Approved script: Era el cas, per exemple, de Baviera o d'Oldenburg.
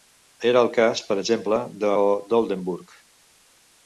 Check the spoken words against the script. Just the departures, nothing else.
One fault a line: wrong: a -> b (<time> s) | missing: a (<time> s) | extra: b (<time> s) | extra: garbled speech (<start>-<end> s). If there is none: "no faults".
missing: Baviera (1.9 s)